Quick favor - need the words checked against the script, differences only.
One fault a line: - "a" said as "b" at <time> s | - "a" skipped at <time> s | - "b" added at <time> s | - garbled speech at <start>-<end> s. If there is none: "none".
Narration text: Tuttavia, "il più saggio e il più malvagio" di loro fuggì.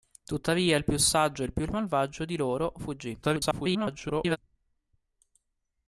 - garbled speech at 3.2-4.4 s